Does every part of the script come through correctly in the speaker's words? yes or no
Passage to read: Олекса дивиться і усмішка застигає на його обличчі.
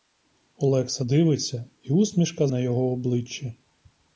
no